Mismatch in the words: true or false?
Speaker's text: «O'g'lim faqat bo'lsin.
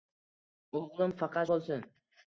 false